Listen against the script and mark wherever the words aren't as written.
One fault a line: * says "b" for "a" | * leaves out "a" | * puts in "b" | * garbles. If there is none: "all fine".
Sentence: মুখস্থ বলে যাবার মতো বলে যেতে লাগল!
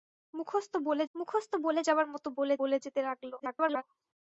* puts in "মুখস্থ বলে"
* puts in "বলে"
* garbles